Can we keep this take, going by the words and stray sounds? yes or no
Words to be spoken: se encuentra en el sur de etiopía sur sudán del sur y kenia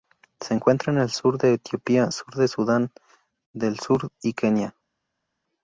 no